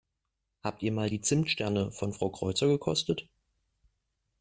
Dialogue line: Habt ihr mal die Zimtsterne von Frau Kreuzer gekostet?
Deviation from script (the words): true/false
false